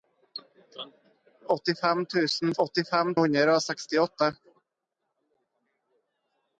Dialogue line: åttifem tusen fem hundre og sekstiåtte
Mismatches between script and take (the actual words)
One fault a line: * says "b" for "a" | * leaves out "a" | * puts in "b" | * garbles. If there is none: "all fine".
* says "åttifem" for "fem"